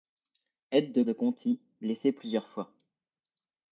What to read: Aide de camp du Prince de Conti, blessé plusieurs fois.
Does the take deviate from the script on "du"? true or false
true